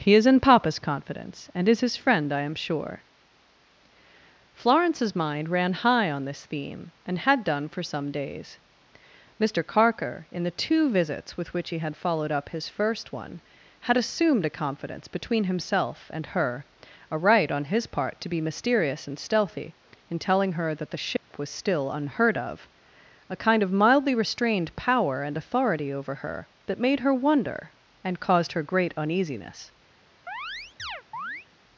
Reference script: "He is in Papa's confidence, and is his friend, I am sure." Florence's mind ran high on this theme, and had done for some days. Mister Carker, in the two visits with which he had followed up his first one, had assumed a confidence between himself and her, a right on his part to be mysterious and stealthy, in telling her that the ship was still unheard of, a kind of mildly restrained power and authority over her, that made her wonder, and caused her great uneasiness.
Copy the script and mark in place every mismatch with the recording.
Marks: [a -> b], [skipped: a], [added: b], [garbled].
"He is in Papa's confidence, and is his friend, I am sure." Florence's mind ran high on this theme, and had done for some days. Mister Carker, in the two visits with which he had followed up his first one, had assumed a confidence between himself and her, a right on his part to be mysterious and stealthy, in telling her that the ship was still unheard of, a kind of mildly restrained power and authority over her, that made her wonder, and caused her great uneasiness.